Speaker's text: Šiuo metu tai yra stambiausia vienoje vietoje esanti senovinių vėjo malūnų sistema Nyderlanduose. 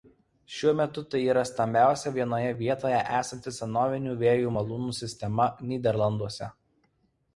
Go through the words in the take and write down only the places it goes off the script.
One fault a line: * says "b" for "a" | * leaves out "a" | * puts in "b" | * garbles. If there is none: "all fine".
all fine